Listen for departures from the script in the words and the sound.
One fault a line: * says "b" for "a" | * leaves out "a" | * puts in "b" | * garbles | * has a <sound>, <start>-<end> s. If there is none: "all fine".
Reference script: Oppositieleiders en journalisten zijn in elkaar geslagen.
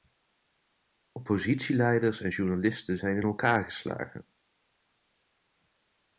all fine